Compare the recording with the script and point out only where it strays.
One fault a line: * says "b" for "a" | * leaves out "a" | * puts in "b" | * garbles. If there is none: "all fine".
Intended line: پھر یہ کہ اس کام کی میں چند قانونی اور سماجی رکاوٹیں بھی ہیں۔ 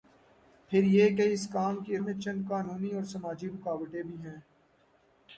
all fine